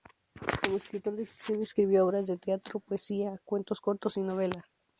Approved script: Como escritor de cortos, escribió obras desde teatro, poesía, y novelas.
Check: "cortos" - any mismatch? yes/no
yes